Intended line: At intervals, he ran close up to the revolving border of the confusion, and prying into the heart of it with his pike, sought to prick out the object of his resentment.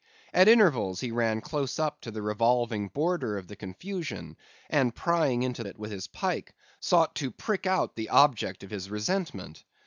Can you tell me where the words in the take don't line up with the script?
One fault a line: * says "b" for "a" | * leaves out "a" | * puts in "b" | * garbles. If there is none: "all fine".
* leaves out "the heart of"